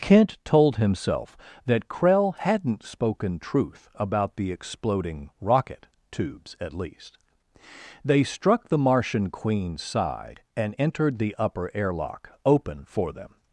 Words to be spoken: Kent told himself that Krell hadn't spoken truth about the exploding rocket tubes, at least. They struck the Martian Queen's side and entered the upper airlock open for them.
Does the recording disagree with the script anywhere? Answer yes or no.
no